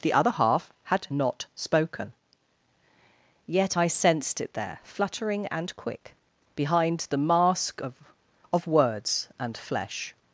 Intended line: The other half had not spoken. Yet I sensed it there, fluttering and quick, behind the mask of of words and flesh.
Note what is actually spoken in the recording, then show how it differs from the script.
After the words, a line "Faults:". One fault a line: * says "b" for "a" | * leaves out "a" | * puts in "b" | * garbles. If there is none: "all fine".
The other half had not spoken. Yet I sensed it there, fluttering and quick, behind the mask of of words and flesh.
Faults:
all fine